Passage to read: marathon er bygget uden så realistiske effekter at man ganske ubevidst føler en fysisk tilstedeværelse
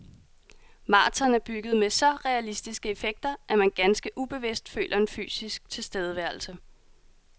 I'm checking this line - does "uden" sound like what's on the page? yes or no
no